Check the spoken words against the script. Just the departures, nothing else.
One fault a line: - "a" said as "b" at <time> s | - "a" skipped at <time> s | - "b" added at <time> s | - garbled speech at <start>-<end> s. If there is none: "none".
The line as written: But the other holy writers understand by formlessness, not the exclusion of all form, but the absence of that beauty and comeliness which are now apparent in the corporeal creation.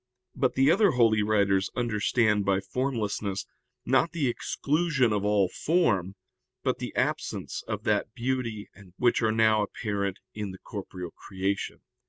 - "comeliness" skipped at 9.0 s